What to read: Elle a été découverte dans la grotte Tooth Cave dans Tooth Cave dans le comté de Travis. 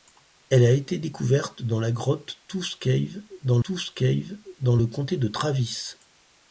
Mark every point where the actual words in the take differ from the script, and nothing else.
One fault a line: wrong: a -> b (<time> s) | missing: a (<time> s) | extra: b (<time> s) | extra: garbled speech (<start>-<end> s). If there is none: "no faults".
no faults